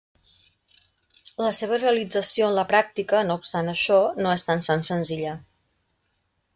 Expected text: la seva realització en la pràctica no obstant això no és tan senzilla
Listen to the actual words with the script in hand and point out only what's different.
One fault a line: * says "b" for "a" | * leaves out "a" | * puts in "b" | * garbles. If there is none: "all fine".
* puts in "tan"